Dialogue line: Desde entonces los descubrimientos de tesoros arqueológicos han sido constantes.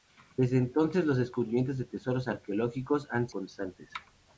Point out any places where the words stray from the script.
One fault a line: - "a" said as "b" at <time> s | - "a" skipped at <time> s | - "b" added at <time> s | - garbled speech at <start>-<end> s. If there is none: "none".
- "sido" skipped at 3.3 s